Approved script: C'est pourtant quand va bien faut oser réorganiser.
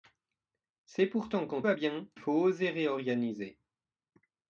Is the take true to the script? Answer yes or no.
yes